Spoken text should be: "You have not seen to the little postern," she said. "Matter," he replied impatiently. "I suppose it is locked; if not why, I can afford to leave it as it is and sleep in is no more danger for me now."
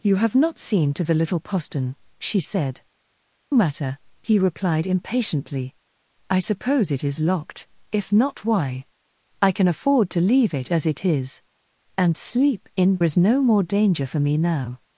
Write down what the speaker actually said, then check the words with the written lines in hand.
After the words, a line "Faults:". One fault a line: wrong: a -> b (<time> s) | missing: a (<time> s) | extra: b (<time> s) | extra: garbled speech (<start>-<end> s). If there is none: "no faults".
"You have not seen to the little postern," she said. "Matter," he replied impatiently. "I suppose it is locked; if not why, I can afford to leave it as it is and sleep in is no more danger for me now."
Faults:
no faults